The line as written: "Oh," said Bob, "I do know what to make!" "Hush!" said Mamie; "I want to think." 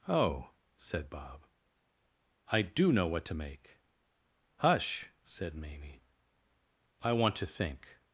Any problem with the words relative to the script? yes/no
no